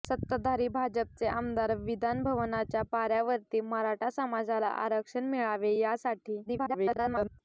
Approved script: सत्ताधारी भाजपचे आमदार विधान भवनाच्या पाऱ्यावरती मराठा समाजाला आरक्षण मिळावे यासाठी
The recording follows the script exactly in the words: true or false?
false